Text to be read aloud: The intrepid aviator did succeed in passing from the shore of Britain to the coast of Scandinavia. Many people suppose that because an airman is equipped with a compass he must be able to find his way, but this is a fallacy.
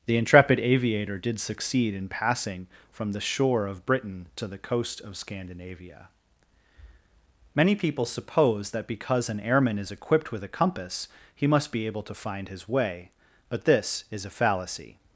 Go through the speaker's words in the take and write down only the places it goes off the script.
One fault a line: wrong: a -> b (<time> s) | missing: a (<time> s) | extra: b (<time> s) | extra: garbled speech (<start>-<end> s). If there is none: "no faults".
no faults